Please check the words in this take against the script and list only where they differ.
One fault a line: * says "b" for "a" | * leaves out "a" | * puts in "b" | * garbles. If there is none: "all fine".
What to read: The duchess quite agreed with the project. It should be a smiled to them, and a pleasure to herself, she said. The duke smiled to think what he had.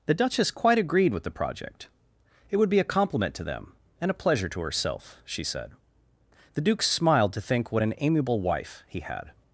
* says "would" for "should"
* says "compliment" for "smiled"
* puts in "an amiable wife"